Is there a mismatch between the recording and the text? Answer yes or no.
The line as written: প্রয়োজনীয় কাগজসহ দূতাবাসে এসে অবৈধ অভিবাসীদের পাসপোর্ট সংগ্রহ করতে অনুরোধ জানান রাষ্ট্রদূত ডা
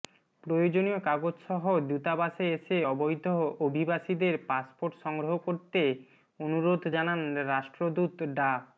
no